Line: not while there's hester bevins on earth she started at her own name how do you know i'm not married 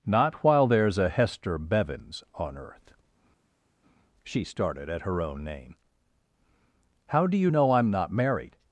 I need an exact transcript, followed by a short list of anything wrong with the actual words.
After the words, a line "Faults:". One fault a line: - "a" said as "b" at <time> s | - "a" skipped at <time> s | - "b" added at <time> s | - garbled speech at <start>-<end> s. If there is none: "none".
not while there's a hester bevins on earth she started at her own name how do you know i'm not married
Faults:
- "a" added at 1.0 s